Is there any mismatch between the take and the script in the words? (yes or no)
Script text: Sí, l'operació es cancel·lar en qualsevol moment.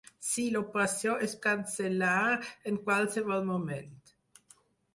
no